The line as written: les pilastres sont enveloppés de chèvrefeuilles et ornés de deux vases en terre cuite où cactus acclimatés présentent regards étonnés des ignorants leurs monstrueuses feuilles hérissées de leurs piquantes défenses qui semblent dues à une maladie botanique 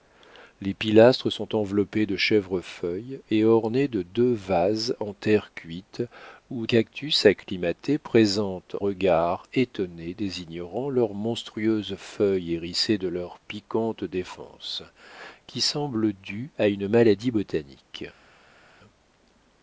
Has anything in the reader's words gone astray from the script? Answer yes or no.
no